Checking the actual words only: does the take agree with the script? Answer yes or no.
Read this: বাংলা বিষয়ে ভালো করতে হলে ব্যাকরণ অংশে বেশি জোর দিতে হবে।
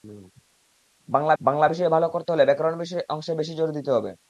no